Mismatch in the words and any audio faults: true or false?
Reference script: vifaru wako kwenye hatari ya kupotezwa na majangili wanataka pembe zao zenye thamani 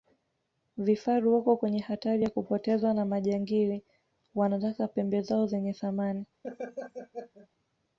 true